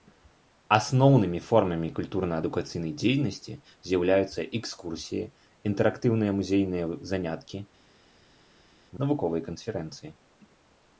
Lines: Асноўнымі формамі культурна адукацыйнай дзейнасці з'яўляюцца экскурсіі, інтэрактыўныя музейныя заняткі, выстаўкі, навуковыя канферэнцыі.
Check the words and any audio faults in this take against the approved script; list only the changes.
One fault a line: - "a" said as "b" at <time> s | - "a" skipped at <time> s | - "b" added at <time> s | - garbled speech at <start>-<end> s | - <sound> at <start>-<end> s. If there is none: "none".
- "выстаўкі" skipped at 7.6 s